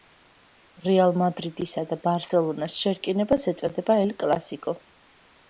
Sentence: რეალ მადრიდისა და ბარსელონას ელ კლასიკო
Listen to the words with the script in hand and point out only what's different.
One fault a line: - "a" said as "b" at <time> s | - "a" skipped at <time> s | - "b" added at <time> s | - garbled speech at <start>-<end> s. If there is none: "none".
- "შერკინებას ეწოდება" added at 2.9 s